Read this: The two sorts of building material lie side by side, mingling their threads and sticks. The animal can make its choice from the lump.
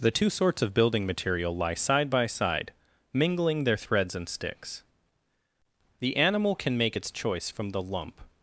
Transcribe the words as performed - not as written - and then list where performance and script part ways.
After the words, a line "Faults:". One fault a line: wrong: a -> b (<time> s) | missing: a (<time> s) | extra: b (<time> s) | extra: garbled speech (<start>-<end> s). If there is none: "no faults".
The two sorts of building material lie side by side, mingling their threads and sticks. The animal can make its choice from the lump.
Faults:
no faults